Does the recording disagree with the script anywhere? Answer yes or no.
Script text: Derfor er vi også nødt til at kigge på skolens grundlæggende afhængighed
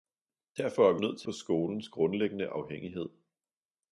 yes